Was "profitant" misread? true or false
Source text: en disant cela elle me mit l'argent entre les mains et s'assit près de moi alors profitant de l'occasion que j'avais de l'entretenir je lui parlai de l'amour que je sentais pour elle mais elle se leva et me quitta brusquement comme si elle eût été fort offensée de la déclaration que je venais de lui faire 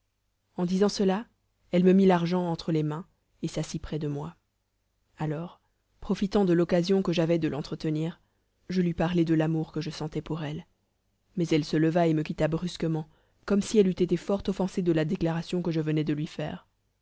false